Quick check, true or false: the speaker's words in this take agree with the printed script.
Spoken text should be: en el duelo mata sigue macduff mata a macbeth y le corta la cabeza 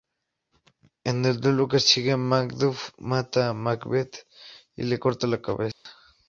false